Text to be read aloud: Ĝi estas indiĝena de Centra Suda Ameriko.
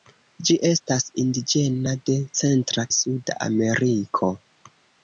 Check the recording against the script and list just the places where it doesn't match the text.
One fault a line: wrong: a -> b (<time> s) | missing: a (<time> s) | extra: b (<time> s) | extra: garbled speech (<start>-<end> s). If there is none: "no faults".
no faults